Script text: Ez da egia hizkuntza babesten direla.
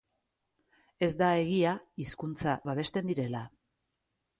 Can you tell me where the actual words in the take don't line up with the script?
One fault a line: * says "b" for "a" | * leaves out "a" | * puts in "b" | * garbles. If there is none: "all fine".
all fine